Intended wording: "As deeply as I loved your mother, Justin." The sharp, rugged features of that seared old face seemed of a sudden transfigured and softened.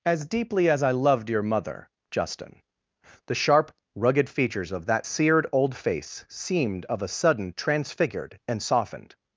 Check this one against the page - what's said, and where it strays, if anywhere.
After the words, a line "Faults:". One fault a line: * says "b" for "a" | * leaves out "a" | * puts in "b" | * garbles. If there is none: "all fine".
"As deeply as I loved your mother, Justin." The sharp, rugged features of that seared old face seemed of a sudden transfigured and softened.
Faults:
all fine